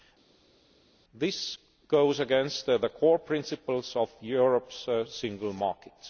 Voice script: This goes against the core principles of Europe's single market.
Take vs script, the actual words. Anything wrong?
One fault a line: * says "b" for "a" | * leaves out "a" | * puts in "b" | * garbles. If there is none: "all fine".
all fine